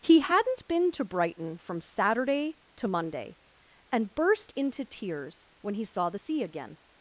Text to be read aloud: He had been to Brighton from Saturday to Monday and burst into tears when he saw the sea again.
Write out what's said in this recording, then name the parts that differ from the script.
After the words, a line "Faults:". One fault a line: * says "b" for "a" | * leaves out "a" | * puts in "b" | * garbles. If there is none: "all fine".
He hadn't been to Brighton from Saturday to Monday and burst into tears when he saw the sea again.
Faults:
* says "hadn't" for "had"